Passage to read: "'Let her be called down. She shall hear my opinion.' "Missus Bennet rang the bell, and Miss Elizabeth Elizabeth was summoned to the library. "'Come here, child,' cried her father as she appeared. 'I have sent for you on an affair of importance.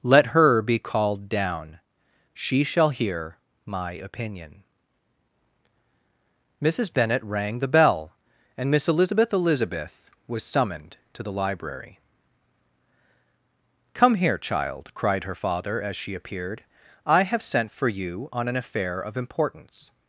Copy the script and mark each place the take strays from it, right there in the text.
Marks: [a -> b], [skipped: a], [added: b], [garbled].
"'Let her be called down. She shall hear my opinion.' "Missus Bennet rang the bell, and Miss Elizabeth Elizabeth was summoned to the library. "'Come here, child,' cried her father as she appeared. 'I have sent for you on an affair of importance.